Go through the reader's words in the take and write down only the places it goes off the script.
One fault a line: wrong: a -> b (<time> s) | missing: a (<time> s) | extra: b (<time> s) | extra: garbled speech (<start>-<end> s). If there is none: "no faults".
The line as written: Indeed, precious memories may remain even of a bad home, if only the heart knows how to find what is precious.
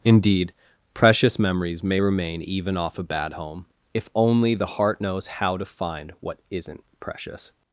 wrong: of -> off (2.8 s)
wrong: is -> isn't (6.5 s)